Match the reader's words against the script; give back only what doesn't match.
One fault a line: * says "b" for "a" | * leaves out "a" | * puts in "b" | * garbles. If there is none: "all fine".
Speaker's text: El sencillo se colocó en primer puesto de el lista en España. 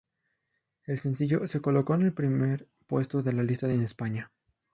* puts in "el"
* says "la" for "el"